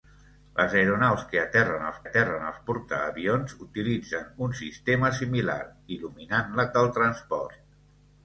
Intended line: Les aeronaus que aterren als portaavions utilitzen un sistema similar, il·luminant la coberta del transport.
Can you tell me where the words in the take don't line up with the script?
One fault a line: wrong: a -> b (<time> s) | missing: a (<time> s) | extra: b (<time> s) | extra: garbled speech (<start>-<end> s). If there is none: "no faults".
extra: aterren als (2.0 s)
missing: coberta (6.7 s)